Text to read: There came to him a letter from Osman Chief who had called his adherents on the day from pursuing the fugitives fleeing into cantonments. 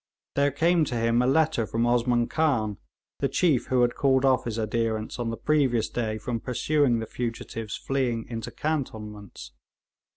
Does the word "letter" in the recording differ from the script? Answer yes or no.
no